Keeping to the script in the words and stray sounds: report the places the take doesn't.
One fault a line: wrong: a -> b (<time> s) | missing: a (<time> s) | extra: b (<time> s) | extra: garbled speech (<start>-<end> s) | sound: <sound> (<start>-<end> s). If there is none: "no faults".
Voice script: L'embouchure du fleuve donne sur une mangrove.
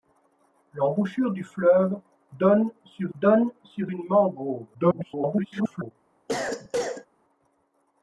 extra: donne sur (3.2 s)
extra: garbled speech (4.7-5.9 s)
sound: cough (6.3-7.1 s)